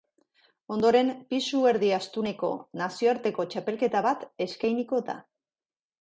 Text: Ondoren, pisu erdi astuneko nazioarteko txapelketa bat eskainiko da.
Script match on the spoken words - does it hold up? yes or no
yes